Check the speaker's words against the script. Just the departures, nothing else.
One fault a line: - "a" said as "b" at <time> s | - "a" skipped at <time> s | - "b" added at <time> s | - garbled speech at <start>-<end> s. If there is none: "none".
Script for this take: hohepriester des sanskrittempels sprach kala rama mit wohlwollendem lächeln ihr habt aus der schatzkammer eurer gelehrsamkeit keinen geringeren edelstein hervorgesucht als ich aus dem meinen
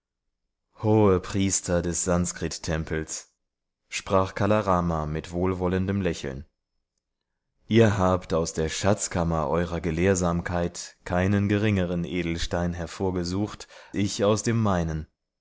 - "als" skipped at 13.7 s